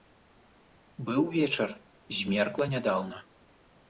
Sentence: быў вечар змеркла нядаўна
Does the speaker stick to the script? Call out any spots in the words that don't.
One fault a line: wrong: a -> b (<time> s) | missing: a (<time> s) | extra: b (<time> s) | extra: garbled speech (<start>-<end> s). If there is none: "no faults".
no faults